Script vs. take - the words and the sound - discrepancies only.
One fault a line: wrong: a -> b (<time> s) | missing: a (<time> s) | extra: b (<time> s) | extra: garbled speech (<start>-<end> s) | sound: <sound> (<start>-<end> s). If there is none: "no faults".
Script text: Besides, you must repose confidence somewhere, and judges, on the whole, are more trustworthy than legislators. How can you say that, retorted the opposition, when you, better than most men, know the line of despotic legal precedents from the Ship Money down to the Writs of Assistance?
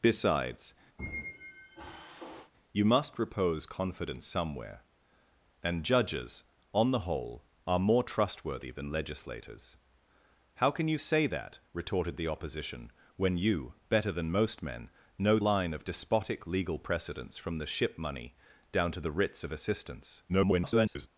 sound: squeak (1.0-2.5 s)
missing: the (15.4 s)
extra: garbled speech (20.3-21.1 s)